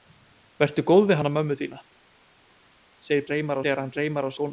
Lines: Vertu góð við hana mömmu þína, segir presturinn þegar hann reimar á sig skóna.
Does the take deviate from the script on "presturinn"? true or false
true